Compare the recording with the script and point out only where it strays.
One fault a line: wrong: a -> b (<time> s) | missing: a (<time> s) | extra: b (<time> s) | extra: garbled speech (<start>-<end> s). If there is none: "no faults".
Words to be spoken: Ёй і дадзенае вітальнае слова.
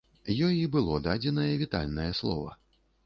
extra: было (0.8 s)